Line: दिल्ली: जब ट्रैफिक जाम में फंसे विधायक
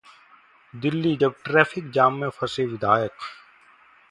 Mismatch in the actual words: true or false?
false